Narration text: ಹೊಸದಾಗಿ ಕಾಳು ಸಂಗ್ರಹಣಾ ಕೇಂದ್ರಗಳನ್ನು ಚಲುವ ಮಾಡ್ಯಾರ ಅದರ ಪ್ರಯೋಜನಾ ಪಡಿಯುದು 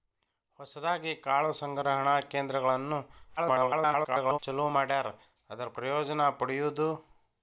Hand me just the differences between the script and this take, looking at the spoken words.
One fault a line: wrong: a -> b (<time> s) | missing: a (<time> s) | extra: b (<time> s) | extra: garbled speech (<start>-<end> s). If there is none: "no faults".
extra: garbled speech (3.4-4.4 s)